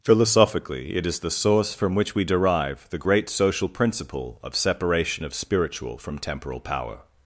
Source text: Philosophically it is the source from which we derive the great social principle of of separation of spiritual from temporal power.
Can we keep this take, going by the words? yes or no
no